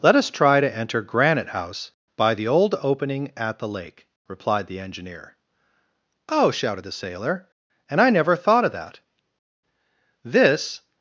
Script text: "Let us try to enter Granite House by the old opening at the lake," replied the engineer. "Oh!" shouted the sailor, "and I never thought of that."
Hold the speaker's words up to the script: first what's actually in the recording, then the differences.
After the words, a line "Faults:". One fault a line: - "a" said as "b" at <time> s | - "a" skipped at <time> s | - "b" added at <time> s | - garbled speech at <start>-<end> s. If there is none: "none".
"Let us try to enter Granite House by the old opening at the lake," replied the engineer. "Oh!" shouted the sailor, "and I never thought of that." This
Faults:
- "This" added at 10.2 s